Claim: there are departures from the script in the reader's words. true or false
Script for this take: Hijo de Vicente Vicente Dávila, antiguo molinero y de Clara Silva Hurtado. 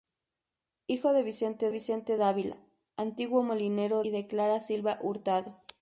false